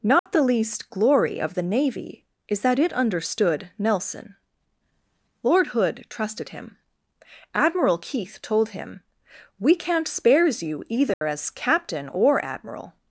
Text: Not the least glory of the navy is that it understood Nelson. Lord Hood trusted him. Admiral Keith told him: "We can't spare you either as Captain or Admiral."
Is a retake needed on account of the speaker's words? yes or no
yes